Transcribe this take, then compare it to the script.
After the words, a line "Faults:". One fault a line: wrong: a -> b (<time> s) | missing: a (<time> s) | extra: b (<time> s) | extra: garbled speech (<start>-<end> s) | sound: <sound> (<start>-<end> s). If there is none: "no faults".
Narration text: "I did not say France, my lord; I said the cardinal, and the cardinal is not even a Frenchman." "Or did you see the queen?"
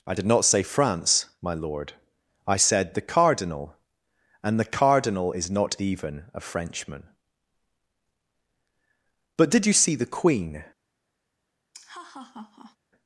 "I did not say France, my lord; I said the cardinal, and the cardinal is not even a Frenchman." "But did you see the queen?"
Faults:
wrong: Or -> But (9.4 s)
sound: laugh (11.7-12.8 s)